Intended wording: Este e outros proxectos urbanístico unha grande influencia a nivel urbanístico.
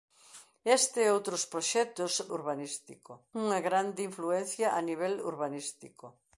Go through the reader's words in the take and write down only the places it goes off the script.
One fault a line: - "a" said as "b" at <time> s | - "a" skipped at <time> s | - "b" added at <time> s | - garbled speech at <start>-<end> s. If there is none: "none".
none